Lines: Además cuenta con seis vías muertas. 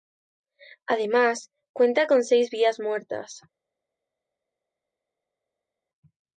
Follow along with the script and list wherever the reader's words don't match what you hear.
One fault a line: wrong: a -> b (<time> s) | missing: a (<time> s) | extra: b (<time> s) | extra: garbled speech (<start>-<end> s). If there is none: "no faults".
no faults